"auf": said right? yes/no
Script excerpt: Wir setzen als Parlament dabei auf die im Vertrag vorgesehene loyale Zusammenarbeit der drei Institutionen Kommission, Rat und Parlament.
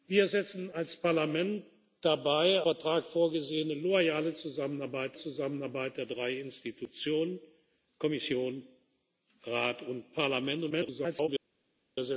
no